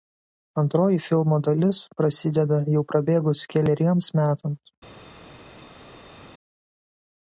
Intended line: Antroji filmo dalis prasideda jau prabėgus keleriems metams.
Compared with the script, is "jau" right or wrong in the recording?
right